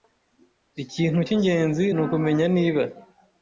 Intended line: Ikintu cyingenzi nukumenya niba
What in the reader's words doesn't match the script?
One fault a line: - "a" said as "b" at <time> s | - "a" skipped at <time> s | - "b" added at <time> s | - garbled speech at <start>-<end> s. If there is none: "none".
none